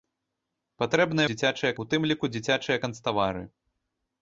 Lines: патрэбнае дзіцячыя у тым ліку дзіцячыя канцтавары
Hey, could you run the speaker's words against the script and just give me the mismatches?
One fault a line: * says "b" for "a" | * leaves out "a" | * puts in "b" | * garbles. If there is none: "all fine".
all fine